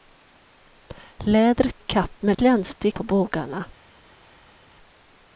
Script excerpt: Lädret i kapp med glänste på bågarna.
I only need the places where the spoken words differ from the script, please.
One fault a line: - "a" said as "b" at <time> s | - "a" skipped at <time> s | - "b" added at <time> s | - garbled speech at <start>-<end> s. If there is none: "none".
none